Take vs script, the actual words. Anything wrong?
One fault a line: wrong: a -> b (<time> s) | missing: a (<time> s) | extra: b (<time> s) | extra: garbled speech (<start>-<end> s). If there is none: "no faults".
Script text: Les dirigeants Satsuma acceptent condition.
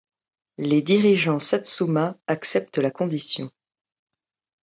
extra: la (2.8 s)